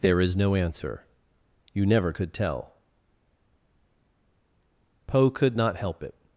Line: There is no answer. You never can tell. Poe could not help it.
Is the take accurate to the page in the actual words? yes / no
no